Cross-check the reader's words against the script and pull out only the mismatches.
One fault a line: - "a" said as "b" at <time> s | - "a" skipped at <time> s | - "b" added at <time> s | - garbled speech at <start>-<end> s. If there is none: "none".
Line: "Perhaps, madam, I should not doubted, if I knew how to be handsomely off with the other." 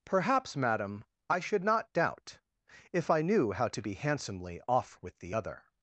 - "doubted" said as "doubt" at 1.9 s